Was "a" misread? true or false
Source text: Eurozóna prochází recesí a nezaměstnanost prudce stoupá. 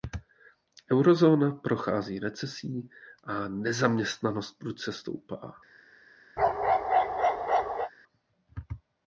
false